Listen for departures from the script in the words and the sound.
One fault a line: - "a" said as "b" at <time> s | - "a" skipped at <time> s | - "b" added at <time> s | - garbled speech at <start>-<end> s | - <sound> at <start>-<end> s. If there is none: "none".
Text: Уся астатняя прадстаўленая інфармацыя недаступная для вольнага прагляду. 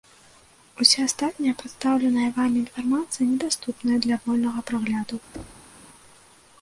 - "вамі" added at 2.4 s
- thud at 5.3-5.7 s